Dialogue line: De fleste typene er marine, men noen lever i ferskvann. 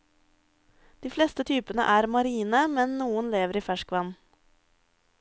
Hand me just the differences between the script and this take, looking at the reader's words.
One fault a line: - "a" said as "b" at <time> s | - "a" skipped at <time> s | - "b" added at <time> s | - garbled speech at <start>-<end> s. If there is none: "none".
none